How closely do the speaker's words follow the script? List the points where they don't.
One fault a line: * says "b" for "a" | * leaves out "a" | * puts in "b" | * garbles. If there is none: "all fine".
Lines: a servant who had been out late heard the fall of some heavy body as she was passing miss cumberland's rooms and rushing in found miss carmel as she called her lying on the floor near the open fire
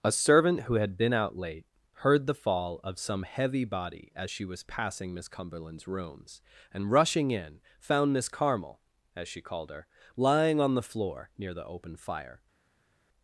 all fine